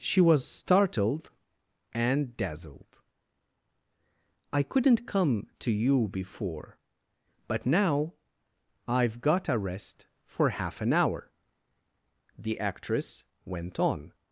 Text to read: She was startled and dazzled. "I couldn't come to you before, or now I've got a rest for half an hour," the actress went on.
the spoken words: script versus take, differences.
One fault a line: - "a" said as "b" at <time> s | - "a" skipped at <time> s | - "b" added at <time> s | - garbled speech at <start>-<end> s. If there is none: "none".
- "or" said as "but" at 7.5 s